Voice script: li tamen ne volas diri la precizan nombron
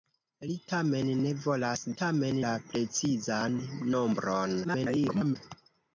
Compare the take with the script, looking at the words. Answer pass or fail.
fail